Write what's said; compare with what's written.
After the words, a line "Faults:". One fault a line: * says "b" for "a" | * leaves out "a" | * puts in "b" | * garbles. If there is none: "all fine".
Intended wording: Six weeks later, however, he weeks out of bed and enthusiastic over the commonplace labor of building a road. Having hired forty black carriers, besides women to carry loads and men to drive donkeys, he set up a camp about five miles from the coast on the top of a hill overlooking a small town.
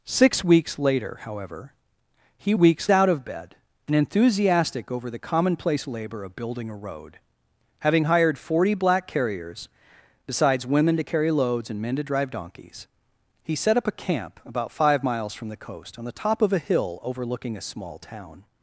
Six weeks later, however, he weeks out of bed and enthusiastic over the commonplace labor of building a road. Having hired forty black carriers, besides women to carry loads and men to drive donkeys, he set up a camp about five miles from the coast on the top of a hill overlooking a small town.
Faults:
all fine